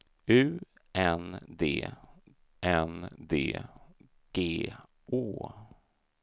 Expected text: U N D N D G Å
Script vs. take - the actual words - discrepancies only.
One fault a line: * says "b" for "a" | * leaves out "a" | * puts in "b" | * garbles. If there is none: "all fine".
all fine